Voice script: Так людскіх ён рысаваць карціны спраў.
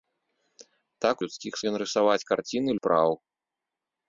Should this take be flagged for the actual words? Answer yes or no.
no